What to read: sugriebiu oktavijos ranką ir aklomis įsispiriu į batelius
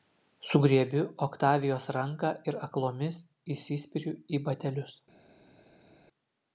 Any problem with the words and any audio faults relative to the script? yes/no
no